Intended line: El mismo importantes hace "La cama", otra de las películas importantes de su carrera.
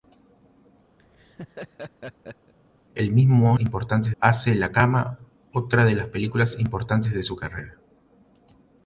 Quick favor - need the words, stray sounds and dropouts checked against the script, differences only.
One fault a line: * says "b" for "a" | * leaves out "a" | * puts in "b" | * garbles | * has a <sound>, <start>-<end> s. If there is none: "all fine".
* has a laugh, 1.0-2.5 s